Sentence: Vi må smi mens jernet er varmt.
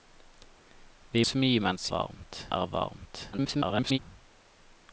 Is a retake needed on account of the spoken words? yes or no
yes